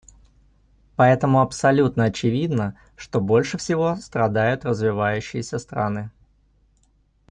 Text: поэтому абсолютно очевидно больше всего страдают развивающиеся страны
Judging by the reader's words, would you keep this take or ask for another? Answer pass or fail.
fail